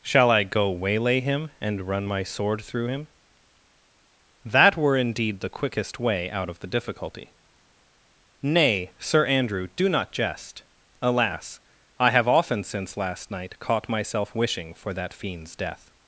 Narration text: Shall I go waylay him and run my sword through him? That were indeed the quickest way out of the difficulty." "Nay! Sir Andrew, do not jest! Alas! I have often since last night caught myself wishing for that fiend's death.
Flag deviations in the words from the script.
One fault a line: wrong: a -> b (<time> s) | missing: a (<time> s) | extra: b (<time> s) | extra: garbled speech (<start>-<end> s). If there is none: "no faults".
no faults